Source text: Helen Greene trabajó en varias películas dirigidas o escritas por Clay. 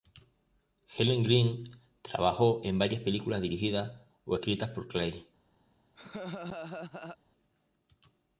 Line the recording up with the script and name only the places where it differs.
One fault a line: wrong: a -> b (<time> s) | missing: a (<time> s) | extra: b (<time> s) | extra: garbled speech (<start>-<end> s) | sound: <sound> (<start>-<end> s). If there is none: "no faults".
sound: laugh (5.9-7.2 s)